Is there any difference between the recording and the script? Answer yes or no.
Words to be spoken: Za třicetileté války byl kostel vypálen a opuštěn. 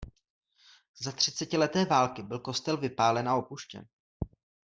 no